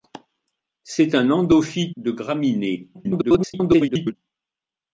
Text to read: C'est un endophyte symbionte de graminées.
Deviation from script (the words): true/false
true